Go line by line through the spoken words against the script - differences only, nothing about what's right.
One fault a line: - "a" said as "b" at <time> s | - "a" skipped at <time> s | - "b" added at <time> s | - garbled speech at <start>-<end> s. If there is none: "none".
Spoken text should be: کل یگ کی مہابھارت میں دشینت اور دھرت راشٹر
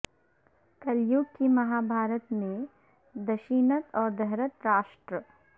none